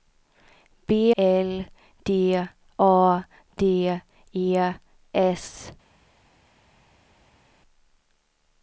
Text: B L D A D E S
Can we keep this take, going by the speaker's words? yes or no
yes